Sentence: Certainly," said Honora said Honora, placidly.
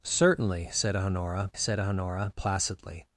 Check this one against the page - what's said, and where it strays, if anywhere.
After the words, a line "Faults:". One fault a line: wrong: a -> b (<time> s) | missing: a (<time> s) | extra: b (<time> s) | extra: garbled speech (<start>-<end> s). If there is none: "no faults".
Certainly," said Honora said Honora, placidly.
Faults:
no faults